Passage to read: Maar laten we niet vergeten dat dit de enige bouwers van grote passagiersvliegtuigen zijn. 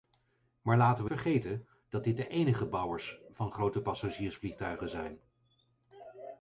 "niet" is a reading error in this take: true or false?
true